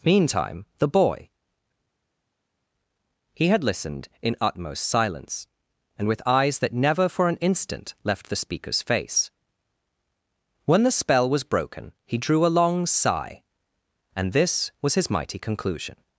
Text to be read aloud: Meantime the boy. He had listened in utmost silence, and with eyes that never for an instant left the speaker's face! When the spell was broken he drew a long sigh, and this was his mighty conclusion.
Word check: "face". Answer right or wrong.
right